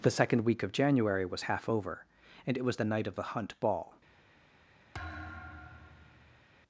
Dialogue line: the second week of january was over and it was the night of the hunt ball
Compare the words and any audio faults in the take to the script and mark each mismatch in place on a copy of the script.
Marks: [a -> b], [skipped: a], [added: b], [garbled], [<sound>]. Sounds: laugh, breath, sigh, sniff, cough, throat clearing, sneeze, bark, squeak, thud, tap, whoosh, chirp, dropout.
the second week of january was [added: half] over and it was the night of the hunt ball [thud]